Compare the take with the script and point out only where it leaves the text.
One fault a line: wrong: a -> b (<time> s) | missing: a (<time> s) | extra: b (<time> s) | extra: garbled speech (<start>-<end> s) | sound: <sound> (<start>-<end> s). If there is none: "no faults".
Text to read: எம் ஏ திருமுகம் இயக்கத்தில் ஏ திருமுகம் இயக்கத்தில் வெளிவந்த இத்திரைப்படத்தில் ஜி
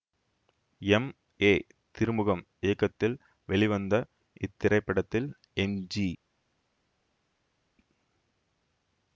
missing: ஏ திருமுகம் இயக்கத்தில் (3.1 s)
extra: எம் (5.6 s)